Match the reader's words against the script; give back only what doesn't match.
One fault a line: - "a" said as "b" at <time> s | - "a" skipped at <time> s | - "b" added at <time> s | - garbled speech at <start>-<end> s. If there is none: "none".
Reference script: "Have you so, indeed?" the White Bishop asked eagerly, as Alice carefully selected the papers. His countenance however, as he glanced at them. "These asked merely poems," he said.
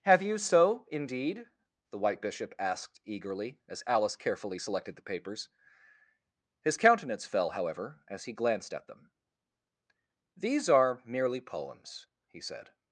- "fell" added at 7.3 s
- "asked" said as "are" at 10.7 s